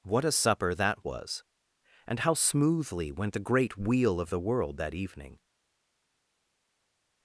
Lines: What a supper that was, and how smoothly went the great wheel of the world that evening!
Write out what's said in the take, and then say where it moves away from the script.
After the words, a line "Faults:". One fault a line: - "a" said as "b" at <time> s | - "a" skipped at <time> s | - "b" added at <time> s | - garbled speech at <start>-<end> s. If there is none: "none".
What a supper that was, and how smoothly went the great wheel of the world that evening!
Faults:
none